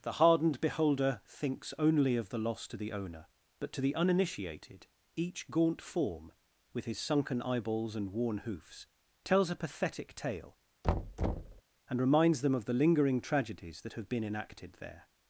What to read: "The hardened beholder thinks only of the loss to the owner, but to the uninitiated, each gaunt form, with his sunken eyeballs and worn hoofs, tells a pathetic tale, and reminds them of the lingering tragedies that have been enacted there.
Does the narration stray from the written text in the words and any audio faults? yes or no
yes